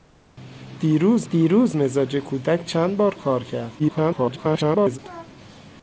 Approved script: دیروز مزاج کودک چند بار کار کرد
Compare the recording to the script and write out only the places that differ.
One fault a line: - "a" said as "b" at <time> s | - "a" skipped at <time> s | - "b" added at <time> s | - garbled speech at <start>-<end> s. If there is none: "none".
- "دیروز" added at 1.3 s
- garbled speech at 3.8-5.0 s